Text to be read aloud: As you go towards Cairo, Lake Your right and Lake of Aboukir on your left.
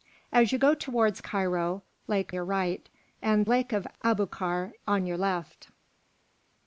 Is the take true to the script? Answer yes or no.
yes